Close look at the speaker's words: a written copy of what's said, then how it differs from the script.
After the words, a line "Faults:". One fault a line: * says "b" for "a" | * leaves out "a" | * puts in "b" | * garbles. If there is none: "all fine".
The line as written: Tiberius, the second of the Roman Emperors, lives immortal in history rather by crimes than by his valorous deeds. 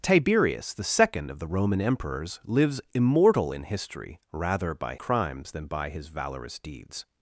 Tiberius, the second of the Roman Emperors, lives immortal in history rather by crimes than by his valorous deeds.
Faults:
all fine